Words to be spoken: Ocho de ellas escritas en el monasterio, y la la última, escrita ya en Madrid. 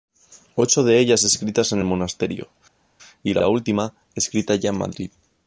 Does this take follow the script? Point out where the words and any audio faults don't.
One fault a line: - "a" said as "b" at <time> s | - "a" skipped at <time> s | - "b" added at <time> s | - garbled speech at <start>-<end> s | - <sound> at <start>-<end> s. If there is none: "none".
none